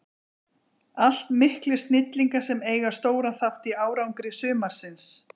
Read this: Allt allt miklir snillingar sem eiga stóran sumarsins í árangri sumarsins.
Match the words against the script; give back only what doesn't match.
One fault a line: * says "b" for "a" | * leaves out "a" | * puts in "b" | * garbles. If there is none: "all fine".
* leaves out "allt"
* says "þátt" for "sumarsins"